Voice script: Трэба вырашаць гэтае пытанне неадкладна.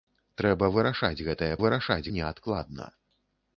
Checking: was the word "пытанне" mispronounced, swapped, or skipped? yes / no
yes